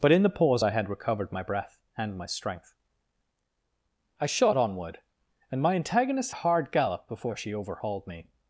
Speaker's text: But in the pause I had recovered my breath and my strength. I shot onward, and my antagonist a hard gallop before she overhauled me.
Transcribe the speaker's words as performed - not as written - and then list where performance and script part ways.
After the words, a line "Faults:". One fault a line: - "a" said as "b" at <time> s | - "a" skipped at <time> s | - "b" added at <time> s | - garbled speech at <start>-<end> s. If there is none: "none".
But in the pause I had recovered my breath and my strength. I shot onward, and my antagonist a hard gallop before she overhauled me.
Faults:
none